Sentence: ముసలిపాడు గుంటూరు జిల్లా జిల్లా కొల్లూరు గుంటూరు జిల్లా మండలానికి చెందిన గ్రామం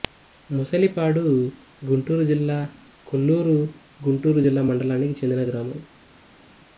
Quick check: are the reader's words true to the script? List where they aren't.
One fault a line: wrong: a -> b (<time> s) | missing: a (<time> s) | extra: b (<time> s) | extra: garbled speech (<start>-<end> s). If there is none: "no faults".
missing: జిల్లా (2.6 s)